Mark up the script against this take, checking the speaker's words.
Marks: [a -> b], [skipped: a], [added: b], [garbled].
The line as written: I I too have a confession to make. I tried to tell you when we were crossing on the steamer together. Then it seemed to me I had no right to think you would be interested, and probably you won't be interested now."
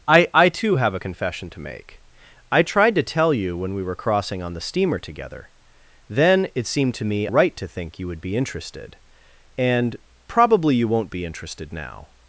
I I too have a confession to make. I tried to tell you when we were crossing on the steamer together. Then it seemed to me [skipped: I had no] right to think you would be interested, and probably you won't be interested now."